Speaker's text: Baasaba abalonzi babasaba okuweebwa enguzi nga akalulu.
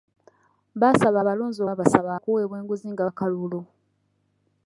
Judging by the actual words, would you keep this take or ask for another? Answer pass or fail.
pass